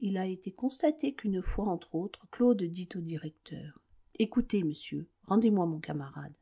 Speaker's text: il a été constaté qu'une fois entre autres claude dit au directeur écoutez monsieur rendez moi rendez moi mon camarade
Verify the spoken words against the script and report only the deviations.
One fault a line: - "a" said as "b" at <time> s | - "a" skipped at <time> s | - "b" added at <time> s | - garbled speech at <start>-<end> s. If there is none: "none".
- "rendez moi" skipped at 5.7 s